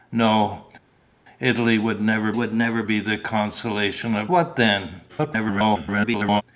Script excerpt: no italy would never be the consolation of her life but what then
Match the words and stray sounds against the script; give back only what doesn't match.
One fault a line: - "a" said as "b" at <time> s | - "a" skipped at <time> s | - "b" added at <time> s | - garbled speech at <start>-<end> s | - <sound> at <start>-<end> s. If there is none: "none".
- "would never" added at 2.3 s
- "her life but" skipped at 4.3 s
- garbled speech at 5.1-6.4 s